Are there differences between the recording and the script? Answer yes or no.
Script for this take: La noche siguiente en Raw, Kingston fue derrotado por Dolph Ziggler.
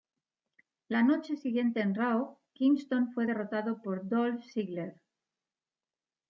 no